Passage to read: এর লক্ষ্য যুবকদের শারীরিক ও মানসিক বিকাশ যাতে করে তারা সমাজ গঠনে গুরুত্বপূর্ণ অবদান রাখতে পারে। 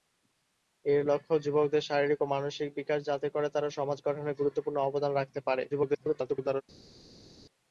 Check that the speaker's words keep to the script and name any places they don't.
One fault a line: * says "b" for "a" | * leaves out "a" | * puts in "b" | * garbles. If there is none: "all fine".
* garbles